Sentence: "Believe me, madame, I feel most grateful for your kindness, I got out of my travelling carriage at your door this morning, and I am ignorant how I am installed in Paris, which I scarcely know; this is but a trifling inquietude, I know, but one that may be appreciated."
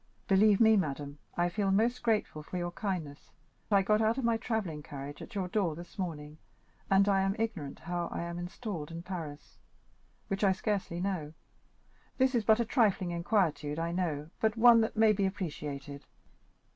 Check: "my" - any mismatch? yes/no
no